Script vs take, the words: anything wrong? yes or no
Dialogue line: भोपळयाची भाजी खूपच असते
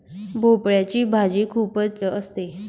no